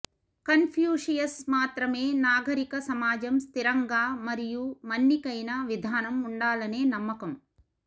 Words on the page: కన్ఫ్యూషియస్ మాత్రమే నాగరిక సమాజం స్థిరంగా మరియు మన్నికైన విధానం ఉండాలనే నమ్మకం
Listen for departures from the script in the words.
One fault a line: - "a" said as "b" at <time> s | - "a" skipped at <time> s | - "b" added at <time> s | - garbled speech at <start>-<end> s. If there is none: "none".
none